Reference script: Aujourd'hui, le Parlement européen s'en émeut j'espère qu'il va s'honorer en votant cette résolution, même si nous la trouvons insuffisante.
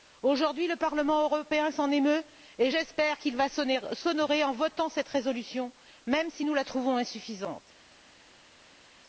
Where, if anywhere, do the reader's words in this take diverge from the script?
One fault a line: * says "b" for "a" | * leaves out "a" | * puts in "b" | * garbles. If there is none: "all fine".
* puts in "et"